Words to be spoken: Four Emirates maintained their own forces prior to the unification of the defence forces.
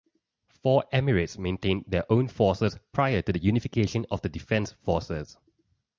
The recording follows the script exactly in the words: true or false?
true